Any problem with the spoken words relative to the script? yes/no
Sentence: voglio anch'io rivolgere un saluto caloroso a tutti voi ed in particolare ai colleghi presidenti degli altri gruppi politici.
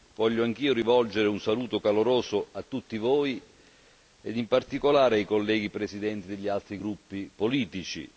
no